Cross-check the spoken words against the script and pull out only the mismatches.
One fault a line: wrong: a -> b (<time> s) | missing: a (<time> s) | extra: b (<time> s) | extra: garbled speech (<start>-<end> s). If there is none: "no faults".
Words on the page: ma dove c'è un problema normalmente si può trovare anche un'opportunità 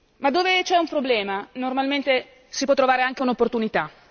no faults